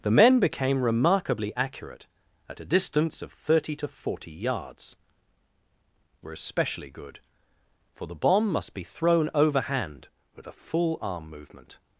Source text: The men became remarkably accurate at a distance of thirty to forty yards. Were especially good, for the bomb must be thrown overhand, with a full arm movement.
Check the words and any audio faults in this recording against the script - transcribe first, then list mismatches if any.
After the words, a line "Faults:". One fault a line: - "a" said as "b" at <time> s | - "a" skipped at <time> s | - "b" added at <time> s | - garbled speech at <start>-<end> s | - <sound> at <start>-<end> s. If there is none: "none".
The men became remarkably accurate at a distance of thirty to forty yards. Were especially good, for the bomb must be thrown overhand, with a full arm movement.
Faults:
none